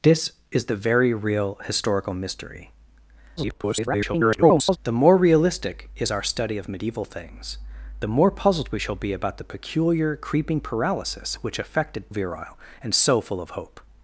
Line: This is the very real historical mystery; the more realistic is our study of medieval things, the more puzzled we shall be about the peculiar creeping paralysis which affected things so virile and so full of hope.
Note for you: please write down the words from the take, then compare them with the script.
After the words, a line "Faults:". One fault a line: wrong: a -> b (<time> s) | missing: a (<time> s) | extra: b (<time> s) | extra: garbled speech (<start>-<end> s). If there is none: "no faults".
This is the very real historical mystery; [garbled] the more realistic is our study of medieval things, the more puzzled we shall be about the peculiar creeping paralysis which affected virile and so full of hope.
Faults:
extra: garbled speech (3.4-4.8 s)
missing: things so (12.1 s)